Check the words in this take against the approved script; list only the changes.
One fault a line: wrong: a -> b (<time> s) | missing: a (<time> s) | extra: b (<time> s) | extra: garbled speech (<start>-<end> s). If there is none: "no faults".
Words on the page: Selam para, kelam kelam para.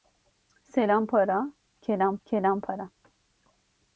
no faults